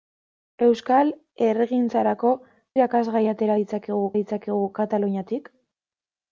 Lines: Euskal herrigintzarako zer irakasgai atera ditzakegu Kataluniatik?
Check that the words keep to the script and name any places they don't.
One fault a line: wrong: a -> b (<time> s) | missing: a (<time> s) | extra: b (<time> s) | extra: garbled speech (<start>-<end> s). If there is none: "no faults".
missing: zer (2.3 s)
extra: ditzakegu (4.2 s)